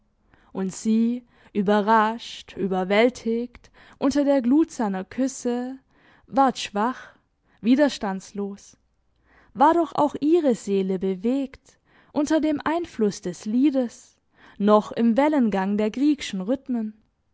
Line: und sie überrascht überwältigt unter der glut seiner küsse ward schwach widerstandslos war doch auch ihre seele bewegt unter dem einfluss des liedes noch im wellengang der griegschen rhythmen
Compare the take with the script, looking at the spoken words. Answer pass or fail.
pass